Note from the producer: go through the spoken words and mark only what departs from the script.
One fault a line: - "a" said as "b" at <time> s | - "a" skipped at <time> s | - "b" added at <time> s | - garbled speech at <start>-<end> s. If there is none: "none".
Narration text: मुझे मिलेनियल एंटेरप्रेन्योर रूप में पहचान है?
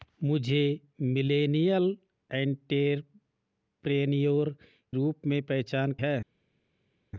none